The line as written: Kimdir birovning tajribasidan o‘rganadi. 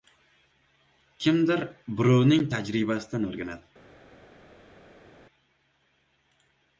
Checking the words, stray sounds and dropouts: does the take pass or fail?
pass